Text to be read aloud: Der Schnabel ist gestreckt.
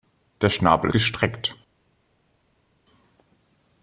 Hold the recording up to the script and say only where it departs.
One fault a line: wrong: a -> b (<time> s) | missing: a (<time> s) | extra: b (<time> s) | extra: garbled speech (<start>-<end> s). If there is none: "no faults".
missing: ist (0.9 s)